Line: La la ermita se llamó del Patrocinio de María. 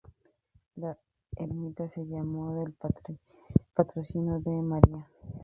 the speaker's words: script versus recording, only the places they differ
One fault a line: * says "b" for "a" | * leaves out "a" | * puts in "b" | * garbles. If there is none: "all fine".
* leaves out "la"